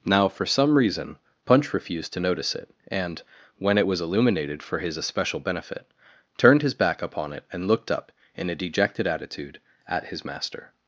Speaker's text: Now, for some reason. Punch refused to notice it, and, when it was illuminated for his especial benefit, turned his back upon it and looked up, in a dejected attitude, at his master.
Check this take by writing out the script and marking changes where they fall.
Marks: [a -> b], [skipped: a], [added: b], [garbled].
Now, for some reason. Punch refused to notice it, and, when it was illuminated for his especial benefit, turned his back upon it and looked up, in a dejected attitude, at his master.